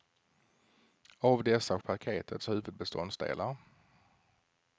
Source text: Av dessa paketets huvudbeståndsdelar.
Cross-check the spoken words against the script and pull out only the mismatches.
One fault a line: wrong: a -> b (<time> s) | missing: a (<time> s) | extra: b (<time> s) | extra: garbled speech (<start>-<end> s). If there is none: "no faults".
no faults